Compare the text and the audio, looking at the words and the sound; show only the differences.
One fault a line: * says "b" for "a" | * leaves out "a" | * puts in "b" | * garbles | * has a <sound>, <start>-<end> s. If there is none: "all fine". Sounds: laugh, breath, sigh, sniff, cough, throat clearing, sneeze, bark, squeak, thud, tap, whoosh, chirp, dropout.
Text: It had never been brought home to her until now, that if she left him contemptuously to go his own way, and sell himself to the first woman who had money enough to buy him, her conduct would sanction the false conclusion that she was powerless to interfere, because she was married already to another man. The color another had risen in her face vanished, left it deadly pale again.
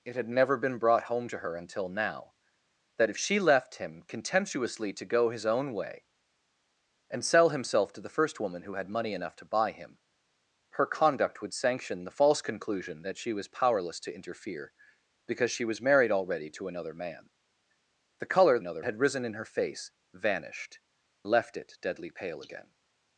all fine